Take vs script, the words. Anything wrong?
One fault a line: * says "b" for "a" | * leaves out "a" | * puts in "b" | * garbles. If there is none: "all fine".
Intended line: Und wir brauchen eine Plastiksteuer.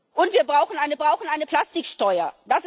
* puts in "brauchen eine"